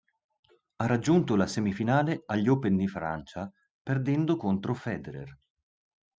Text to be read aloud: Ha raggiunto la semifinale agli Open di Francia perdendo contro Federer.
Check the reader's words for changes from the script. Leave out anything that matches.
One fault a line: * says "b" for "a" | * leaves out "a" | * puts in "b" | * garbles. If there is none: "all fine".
all fine